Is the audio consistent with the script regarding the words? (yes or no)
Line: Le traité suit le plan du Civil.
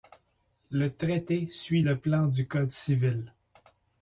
no